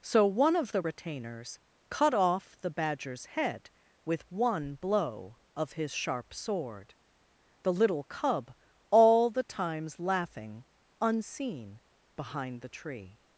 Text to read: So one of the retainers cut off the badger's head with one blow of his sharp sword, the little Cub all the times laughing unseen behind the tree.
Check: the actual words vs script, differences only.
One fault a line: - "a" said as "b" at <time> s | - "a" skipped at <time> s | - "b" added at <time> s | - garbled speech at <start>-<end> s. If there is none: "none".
none